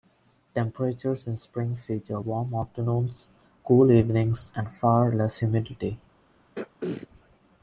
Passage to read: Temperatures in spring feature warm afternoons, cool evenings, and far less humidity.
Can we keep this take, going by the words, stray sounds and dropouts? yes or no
no